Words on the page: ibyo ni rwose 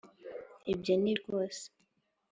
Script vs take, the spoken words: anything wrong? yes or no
no